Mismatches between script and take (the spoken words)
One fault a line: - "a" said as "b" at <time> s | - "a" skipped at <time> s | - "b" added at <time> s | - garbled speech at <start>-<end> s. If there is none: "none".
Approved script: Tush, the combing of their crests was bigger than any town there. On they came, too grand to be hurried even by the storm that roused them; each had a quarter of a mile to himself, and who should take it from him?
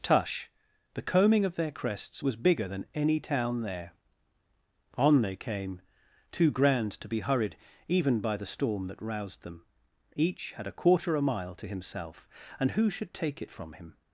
- "of" skipped at 11.2 s